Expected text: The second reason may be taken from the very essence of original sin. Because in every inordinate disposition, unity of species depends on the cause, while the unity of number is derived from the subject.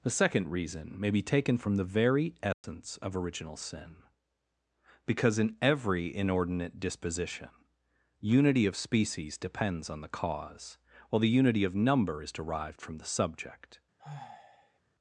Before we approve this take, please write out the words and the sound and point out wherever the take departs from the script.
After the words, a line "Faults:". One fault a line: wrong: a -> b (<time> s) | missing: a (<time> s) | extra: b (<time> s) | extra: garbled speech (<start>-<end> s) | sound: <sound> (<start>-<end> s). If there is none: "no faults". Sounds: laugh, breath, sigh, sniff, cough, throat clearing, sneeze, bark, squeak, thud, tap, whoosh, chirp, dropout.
The second reason may be taken from the very essence of original sin. Because in every inordinate disposition, unity of species depends on the cause, while the unity of number is derived from the subject.
Faults:
sound: dropout (2.5-2.6 s)
sound: sigh (14.0-14.8 s)